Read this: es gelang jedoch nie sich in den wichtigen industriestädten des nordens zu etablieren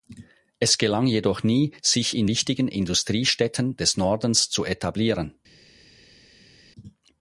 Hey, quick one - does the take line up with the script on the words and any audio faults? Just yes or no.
no